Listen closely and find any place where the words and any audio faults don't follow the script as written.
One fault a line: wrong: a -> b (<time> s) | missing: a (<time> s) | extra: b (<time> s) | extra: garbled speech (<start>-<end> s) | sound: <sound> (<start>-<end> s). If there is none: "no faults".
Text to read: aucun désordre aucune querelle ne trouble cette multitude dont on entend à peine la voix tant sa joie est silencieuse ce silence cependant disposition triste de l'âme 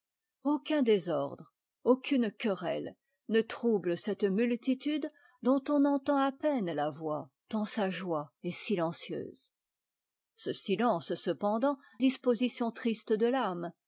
no faults